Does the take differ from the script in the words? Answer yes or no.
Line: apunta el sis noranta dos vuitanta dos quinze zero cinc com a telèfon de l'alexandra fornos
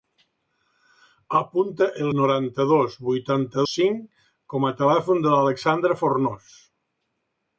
yes